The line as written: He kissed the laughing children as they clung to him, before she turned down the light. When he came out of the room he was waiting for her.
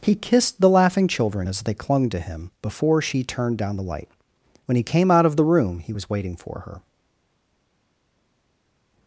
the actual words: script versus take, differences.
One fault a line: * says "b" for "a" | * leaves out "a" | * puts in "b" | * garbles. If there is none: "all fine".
all fine